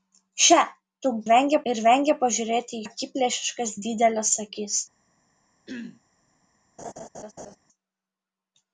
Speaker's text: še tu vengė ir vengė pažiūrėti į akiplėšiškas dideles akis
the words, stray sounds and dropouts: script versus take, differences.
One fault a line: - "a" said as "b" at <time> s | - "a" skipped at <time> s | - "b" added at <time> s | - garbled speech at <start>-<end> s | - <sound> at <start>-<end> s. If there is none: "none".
- throat clearing at 5.7-6.0 s
- laugh at 6.8-7.6 s